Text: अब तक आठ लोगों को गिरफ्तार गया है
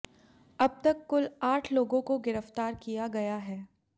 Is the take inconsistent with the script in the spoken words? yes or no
yes